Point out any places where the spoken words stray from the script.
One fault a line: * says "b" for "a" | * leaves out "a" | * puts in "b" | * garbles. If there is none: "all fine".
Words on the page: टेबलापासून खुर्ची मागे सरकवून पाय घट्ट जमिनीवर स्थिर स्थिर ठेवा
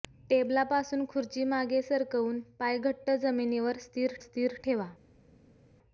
all fine